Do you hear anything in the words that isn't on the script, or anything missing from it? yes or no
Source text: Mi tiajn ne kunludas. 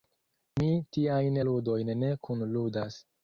yes